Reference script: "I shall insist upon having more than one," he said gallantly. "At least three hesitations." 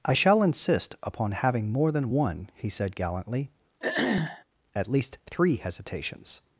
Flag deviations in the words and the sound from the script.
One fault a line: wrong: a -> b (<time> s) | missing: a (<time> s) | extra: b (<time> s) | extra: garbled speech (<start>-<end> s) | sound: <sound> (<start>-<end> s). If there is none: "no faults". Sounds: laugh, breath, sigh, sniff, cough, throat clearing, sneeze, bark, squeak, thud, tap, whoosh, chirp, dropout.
sound: throat clearing (3.8-4.4 s)